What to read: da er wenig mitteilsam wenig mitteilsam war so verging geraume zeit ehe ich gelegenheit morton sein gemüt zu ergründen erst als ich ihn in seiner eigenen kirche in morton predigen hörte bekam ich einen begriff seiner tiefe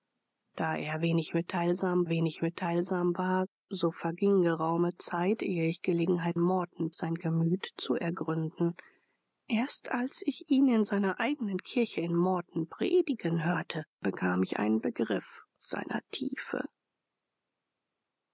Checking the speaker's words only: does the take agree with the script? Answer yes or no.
yes